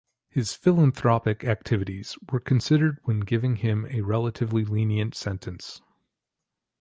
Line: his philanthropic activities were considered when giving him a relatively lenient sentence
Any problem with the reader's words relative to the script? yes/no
no